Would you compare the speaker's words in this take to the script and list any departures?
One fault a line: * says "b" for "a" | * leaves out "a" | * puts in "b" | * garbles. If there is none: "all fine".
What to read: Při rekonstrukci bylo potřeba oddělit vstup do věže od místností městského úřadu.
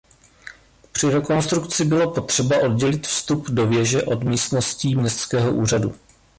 all fine